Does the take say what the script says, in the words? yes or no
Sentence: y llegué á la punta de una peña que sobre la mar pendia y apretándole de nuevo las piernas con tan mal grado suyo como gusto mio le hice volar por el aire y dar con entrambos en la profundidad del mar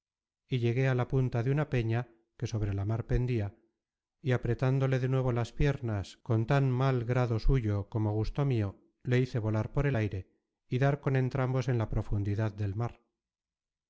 yes